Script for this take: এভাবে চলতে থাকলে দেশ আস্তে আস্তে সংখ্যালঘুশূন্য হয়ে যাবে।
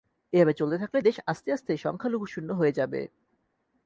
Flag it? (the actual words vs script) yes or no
no